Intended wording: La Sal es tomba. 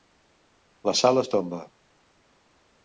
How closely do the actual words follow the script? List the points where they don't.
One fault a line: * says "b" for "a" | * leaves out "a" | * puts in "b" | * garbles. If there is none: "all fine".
all fine